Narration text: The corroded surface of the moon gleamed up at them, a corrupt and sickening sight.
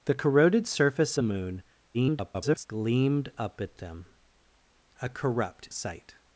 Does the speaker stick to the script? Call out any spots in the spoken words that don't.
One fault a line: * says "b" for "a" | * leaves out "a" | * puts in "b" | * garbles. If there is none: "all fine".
* leaves out "of"
* garbles
* leaves out "and sickening"